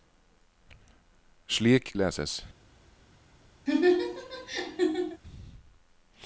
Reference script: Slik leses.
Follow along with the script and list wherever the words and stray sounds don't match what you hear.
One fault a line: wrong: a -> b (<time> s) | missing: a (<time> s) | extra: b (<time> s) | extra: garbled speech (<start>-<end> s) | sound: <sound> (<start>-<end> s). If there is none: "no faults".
sound: laugh (3.7-5.2 s)